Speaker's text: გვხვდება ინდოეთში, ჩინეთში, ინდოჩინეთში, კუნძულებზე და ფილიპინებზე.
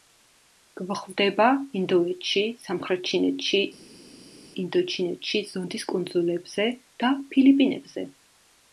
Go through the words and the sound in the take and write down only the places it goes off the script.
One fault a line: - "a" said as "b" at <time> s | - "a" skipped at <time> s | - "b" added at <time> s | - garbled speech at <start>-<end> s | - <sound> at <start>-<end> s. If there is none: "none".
- "სამხრეთ" added at 2.6 s
- "ზონდის" added at 5.6 s